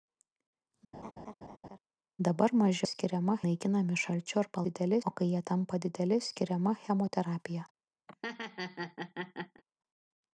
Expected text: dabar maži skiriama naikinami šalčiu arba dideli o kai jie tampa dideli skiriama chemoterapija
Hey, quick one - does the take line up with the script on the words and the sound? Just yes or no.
no